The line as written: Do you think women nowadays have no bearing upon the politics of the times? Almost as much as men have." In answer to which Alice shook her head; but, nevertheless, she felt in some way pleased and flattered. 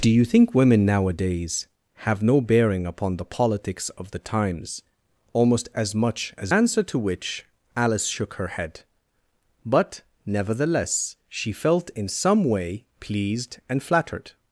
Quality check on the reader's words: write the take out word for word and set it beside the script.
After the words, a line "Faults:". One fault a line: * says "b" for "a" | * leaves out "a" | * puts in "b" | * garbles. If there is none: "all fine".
Do you think women nowadays have no bearing upon the politics of the times? Almost as much as answer to which Alice shook her head; but, nevertheless, she felt in some way pleased and flattered.
Faults:
* leaves out "men have In"